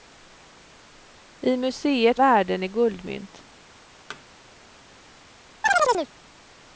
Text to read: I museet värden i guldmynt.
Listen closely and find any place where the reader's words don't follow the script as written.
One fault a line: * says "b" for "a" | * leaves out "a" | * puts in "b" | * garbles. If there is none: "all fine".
all fine